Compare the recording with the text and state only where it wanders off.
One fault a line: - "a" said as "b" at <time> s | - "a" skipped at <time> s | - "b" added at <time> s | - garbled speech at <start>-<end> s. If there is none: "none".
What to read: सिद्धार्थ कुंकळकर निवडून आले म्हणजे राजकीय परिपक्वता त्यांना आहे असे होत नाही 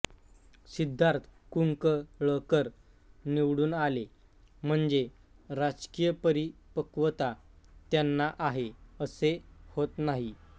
none